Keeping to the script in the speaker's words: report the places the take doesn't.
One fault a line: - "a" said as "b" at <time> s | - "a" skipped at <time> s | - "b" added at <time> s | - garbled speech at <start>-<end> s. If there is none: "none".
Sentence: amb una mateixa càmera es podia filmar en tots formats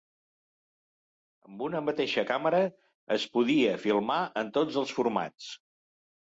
- "els" added at 4.8 s